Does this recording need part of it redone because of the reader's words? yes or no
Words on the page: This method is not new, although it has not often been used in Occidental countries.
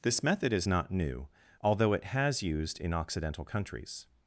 yes